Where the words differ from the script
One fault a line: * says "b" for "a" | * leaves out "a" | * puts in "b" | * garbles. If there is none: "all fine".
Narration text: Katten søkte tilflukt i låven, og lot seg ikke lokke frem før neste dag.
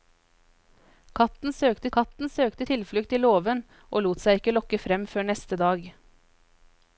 * puts in "katten søkte"